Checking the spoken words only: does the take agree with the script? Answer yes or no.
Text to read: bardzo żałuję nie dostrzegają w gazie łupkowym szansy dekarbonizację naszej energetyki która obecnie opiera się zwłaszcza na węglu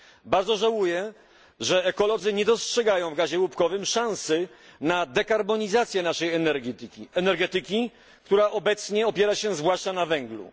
no